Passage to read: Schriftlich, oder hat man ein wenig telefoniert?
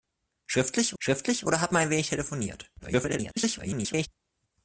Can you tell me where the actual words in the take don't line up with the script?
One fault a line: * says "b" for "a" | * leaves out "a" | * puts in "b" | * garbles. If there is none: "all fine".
* puts in "schriftlich"
* garbles